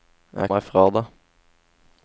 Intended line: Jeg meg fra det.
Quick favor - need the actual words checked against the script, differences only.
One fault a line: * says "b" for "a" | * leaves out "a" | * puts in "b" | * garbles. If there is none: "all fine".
all fine